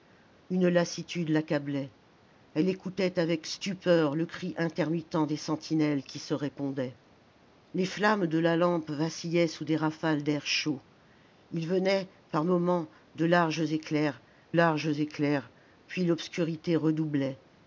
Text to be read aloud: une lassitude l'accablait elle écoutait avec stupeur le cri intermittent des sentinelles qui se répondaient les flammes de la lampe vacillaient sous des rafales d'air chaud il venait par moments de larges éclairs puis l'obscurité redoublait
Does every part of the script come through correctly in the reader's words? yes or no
no